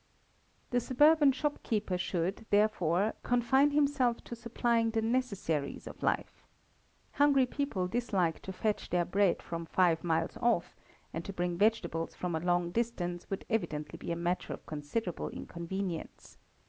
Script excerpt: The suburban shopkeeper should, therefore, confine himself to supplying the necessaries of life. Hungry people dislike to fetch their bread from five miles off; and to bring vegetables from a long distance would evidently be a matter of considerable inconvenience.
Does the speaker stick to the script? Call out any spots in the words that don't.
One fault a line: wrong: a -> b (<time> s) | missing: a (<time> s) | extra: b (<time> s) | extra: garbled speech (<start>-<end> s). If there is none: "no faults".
no faults